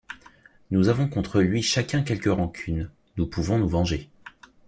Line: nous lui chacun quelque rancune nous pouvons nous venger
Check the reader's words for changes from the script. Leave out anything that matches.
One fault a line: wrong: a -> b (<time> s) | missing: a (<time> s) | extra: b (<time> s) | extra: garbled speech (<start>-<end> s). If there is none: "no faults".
extra: avons contre (0.9 s)